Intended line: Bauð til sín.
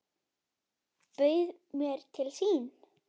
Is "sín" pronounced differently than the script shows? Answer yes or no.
no